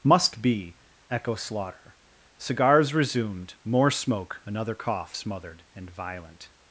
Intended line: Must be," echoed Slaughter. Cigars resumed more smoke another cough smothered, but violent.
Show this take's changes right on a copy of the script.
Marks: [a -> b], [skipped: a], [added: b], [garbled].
Must be," [echoed -> echo] Slaughter. Cigars resumed more smoke another cough smothered, [but -> and] violent.